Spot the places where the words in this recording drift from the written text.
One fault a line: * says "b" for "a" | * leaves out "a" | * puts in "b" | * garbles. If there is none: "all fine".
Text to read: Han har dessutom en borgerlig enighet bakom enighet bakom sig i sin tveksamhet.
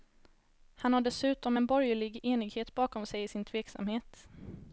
* leaves out "enighet bakom"